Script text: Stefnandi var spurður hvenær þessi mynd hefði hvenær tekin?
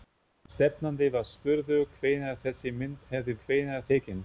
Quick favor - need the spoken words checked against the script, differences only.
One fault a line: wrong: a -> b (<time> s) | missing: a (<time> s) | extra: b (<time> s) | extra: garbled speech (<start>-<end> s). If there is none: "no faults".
no faults